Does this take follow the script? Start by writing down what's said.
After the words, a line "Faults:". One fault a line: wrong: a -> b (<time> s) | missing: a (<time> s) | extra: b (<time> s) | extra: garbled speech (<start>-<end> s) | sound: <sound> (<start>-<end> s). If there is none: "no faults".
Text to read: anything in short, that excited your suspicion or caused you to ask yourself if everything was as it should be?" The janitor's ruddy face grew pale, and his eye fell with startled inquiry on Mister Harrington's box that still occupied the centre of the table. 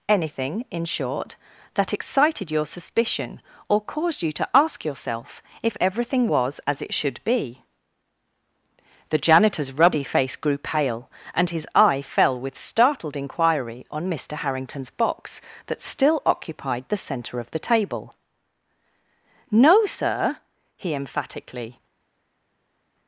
anything in short, that excited your suspicion or caused you to ask yourself if everything was as it should be?" The janitor's ruddy face grew pale, and his eye fell with startled inquiry on Mister Harrington's box that still occupied the centre of the table. "No, sir," he emphatically
Faults:
extra: No sir he emphatically (19.5 s)